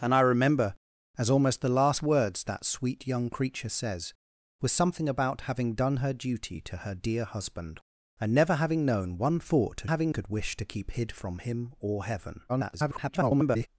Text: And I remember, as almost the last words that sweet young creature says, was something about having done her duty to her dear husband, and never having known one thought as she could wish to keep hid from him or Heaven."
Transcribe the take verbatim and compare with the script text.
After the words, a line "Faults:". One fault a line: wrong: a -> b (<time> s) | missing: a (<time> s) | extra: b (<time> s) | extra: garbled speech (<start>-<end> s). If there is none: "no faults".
And I remember, as almost the last words that sweet young creature says, was something about having done her duty to her dear husband, and never having known one thought as having could wish to keep hid from him or Heaven." [garbled]
Faults:
wrong: she -> having (9.8 s)
extra: garbled speech (12.5-13.7 s)